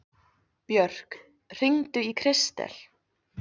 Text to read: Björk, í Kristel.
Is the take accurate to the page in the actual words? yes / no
no